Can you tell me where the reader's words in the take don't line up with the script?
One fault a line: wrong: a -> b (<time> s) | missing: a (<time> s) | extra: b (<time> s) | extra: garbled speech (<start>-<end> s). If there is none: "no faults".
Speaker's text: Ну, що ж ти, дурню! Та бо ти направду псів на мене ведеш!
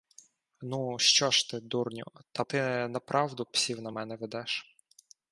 missing: бо (2.4 s)